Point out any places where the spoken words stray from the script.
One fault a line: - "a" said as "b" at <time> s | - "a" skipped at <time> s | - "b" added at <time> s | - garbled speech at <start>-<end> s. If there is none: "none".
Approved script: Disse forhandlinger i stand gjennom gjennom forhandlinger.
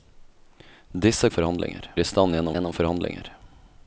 none